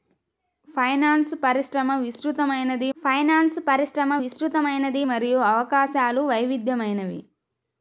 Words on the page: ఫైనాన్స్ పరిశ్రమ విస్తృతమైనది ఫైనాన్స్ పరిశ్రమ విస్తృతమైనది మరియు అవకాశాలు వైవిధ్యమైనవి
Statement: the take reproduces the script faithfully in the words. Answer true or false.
true